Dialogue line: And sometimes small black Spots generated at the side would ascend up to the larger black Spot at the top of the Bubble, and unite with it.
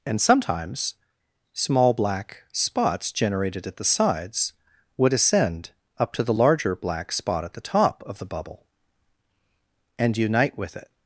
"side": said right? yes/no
no